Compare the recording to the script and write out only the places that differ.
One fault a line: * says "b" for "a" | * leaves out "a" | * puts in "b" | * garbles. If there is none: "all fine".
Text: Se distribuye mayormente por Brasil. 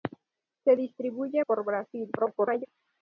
* leaves out "mayormente"
* garbles